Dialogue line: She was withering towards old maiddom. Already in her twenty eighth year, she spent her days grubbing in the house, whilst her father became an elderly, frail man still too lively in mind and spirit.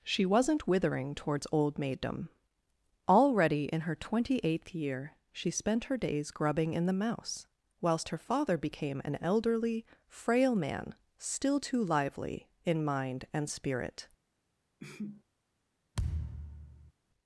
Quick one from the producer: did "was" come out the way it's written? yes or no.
no